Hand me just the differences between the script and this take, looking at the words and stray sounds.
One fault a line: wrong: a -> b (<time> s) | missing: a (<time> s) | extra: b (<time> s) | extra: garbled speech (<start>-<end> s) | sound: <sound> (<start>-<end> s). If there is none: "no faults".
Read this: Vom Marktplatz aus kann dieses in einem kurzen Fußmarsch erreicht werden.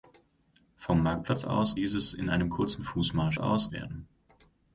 missing: kann (1.8 s)
wrong: erreicht -> aus (3.4 s)